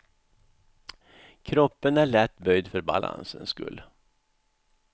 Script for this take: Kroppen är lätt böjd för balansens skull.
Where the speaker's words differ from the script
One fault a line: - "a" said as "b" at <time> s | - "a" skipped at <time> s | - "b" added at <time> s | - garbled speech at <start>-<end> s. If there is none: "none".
none